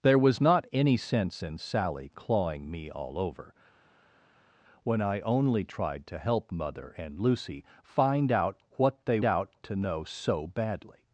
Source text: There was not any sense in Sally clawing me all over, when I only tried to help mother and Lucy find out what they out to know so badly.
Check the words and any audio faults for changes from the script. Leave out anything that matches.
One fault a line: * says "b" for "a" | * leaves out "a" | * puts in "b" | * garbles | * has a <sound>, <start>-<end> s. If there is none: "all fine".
all fine